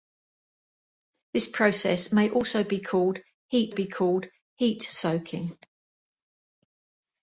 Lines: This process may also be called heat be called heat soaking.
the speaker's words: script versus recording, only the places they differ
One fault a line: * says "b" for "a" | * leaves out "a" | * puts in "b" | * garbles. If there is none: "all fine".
all fine